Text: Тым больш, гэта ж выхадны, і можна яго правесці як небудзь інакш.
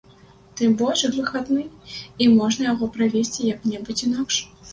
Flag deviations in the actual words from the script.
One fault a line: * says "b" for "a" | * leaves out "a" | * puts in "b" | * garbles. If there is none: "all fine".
* leaves out "гэта"